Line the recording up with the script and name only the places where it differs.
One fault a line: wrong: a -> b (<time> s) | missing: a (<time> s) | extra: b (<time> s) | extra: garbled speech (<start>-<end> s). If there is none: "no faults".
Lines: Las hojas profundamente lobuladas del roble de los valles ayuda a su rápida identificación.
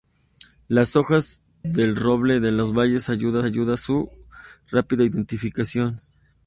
missing: profundamente lobuladas (1.4 s)
extra: ayuda (3.4 s)